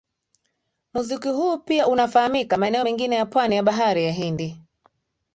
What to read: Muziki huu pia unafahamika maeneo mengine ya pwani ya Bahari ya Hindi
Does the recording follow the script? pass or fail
pass